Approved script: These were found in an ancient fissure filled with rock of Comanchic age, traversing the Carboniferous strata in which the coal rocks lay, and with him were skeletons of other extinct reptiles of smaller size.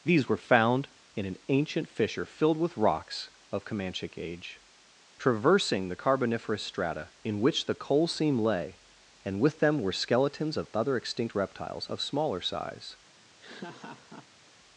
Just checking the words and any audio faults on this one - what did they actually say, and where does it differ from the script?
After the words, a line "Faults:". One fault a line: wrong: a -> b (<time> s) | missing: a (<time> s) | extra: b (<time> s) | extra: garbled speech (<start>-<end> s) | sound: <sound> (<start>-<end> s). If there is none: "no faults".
These were found in an ancient fissure filled with rocks of Comanchic age, traversing the Carboniferous strata in which the coal seam lay, and with them were skeletons of other extinct reptiles of smaller size.
Faults:
wrong: rock -> rocks (2.8 s)
wrong: rocks -> seam (8.1 s)
wrong: him -> them (9.6 s)
sound: laugh (13.4-14.5 s)